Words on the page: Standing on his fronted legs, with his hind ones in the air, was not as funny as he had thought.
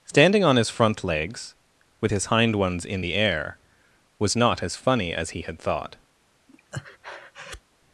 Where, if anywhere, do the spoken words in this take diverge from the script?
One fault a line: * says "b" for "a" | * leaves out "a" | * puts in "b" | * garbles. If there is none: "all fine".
* says "front" for "fronted"